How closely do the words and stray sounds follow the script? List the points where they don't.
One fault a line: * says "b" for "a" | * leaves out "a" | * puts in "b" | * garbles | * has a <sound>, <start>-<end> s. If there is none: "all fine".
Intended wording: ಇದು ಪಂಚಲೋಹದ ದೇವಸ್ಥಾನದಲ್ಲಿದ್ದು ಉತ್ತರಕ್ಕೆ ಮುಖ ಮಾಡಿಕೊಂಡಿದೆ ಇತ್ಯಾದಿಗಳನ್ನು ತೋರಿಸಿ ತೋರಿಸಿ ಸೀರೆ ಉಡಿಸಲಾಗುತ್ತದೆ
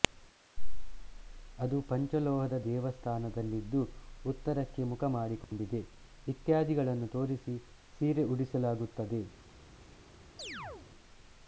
* says "ಅದು" for "ಇದು"
* has a dropout, 5.4-5.5 s
* leaves out "ತೋರಿಸಿ"
* has a chirp, 10.4-10.9 s